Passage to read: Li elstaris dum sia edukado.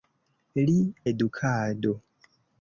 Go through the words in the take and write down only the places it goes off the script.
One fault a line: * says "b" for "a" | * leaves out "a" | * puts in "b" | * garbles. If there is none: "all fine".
* leaves out "elstaris dum sia"